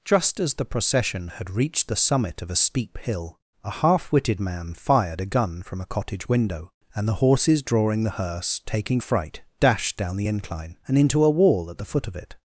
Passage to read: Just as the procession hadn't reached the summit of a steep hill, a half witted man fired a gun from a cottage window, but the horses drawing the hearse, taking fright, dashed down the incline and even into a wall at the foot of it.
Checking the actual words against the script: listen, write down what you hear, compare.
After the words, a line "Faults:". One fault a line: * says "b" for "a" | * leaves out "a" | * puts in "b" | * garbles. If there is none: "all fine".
Just as the procession had reached the summit of a steep hill, a half witted man fired a gun from a cottage window, and the horses drawing the hearse, taking fright, dashed down the incline and into a wall at the foot of it.
Faults:
* says "had" for "hadn't"
* says "and" for "but"
* leaves out "even"